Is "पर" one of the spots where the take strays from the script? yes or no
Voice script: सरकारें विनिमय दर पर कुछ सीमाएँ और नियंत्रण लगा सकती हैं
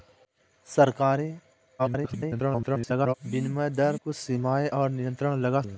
yes